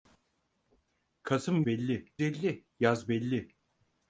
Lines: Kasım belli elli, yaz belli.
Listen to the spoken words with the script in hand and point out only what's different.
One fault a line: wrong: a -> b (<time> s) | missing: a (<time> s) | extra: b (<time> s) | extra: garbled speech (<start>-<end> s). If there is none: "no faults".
no faults